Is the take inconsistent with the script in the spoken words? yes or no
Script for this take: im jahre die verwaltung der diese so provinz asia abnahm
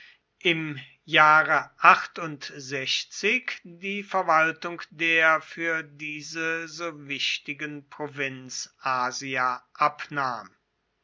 yes